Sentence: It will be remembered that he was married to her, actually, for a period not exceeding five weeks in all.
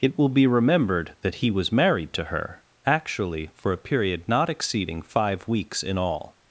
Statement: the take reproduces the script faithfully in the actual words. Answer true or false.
true